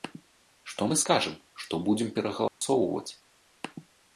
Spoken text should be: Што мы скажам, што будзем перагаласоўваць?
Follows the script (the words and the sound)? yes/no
no